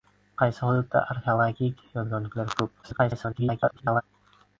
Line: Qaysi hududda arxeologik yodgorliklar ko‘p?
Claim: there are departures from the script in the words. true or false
true